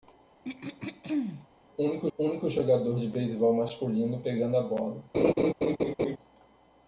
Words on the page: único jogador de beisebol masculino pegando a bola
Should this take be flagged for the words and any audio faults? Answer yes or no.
yes